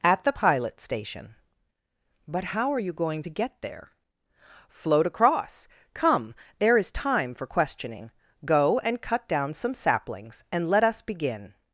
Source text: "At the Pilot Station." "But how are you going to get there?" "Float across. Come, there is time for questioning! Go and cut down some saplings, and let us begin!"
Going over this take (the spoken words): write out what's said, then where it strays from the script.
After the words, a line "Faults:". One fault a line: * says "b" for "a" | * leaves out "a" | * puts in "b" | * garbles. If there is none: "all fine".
"At the Pilot Station." "But how are you going to get there?" "Float across. Come, there is time for questioning! Go and cut down some saplings, and let us begin!"
Faults:
all fine